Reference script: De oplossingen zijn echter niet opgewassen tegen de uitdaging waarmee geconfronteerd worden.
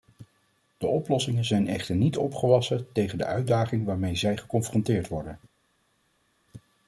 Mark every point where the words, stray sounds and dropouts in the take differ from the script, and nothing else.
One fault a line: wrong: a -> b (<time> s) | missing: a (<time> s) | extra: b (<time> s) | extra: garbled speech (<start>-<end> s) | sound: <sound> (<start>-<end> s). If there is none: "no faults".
extra: zij (4.2 s)